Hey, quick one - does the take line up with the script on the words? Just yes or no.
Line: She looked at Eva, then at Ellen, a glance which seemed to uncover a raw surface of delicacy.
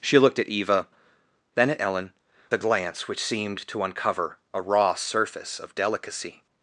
yes